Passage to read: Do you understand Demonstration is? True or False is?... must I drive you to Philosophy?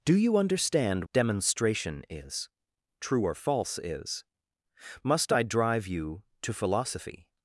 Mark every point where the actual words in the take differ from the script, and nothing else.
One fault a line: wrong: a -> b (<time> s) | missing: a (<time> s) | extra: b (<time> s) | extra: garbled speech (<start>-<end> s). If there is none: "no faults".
no faults